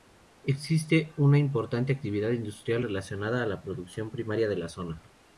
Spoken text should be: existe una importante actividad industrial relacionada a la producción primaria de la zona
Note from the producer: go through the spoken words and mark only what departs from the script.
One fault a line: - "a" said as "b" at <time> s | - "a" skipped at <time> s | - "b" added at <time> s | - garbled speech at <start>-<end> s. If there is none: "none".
none